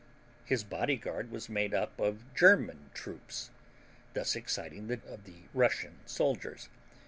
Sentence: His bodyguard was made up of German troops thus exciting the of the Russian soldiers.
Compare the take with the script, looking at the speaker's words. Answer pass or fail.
pass